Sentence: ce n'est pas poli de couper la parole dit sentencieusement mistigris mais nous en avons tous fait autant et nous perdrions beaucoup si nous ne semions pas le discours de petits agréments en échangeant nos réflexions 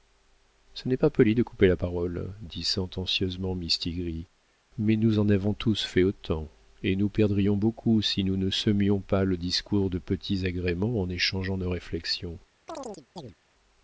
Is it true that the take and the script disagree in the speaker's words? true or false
false